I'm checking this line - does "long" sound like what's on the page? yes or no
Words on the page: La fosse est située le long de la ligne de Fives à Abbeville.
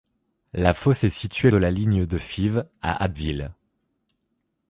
no